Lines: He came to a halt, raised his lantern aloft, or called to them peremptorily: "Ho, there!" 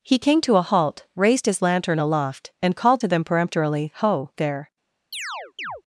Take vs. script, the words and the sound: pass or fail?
fail